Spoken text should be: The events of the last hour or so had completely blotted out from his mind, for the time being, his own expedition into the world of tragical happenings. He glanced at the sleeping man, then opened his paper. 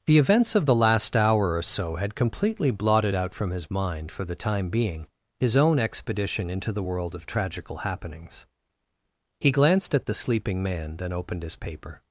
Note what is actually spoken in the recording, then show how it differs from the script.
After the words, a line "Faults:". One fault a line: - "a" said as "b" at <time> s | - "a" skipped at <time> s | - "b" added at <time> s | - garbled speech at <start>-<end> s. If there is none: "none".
The events of the last hour or so had completely blotted out from his mind, for the time being, his own expedition into the world of tragical happenings. He glanced at the sleeping man, then opened his paper.
Faults:
none